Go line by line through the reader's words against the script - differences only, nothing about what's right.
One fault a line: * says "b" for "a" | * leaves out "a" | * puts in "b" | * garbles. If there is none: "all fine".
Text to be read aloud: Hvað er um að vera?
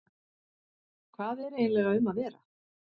* puts in "eiginlega"